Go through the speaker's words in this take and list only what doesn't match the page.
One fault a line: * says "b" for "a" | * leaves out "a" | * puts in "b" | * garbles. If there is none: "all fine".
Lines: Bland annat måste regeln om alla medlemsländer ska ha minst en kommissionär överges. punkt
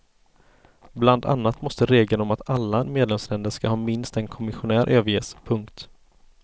* puts in "att"